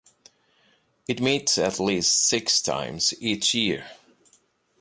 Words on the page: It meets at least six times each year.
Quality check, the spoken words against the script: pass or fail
pass